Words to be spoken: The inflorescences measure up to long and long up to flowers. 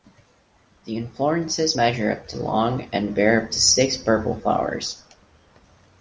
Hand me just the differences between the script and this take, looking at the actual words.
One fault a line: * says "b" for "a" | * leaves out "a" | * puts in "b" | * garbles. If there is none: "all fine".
* says "bear" for "long"
* puts in "six purple"